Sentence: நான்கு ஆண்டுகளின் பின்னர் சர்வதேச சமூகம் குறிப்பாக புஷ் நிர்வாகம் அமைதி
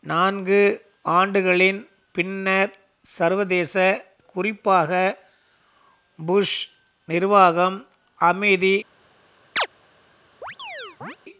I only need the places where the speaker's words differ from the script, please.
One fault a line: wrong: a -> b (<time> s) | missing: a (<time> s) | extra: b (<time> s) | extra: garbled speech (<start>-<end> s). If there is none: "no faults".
missing: சமூகம் (3.8 s)